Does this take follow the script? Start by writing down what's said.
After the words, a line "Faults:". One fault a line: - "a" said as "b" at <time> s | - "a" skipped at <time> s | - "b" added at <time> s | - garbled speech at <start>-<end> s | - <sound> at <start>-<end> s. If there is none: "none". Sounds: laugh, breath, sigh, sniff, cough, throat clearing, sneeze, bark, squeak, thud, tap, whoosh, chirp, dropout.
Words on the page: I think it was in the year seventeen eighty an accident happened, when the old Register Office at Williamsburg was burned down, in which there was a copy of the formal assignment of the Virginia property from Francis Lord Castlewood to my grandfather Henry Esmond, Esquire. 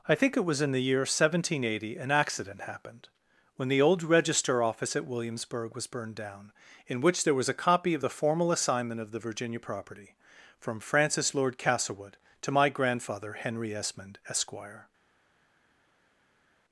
I think it was in the year seventeen eighty an accident happened, when the old Register Office at Williamsburg was burned down, in which there was a copy of the formal assignment of the Virginia property from Francis Lord Castlewood to my grandfather Henry Esmond, Esquire.
Faults:
none